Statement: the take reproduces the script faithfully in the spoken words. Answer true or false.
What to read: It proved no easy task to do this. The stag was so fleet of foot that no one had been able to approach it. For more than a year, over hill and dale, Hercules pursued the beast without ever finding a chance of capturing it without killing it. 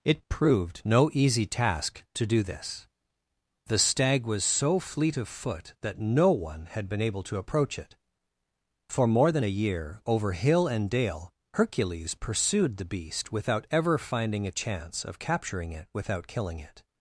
true